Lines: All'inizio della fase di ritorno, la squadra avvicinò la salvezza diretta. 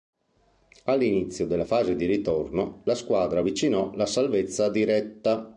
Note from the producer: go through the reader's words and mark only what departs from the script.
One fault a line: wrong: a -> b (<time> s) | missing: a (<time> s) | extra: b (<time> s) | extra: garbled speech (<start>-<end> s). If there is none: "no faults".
no faults